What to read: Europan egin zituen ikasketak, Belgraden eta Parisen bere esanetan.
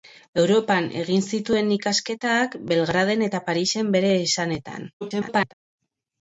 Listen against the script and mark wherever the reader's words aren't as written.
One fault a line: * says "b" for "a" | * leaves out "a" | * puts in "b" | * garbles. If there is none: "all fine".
* garbles